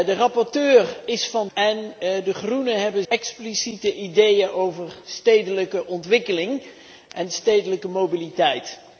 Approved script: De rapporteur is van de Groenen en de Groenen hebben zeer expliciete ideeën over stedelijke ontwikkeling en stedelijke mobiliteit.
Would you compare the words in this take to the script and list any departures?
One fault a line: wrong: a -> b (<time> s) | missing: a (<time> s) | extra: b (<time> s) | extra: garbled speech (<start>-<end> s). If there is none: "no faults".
missing: de Groenen (1.5 s)
missing: zeer (3.0 s)